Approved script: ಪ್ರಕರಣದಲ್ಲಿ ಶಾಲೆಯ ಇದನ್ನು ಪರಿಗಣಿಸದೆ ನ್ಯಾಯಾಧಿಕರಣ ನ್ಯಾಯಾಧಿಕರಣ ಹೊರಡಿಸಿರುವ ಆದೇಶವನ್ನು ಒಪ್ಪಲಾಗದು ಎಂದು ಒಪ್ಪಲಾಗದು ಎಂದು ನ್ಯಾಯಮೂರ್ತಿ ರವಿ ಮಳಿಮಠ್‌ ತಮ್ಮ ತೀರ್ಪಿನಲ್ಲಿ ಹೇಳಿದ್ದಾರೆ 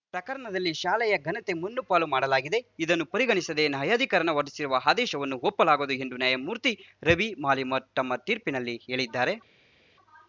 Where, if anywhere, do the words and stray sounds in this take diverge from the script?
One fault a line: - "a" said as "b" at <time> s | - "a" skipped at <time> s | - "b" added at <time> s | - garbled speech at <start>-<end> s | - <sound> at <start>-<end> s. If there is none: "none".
- "ಘನತೆ ಮಣ್ಣುಪಾಲು ಮಾಡಲಾಗಿದೆ" added at 1.2 s
- "ನ್ಯಾಯಾಧಿಕರಣ" skipped at 4.3 s
- "ಒಪ್ಪಲಾಗದು ಎಂದು" skipped at 6.2 s